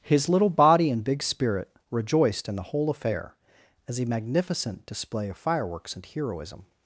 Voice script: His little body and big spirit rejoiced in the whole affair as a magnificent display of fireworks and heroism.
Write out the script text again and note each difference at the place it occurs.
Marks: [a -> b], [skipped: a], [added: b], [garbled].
His little body and big spirit rejoiced in the whole affair as a magnificent display of fireworks and heroism.